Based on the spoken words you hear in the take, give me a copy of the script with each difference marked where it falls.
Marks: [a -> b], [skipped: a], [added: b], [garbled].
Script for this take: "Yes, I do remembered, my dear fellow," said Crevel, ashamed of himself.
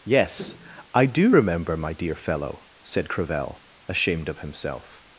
"Yes, I do [remembered, -> remember] my dear fellow," said Crevel, ashamed of himself.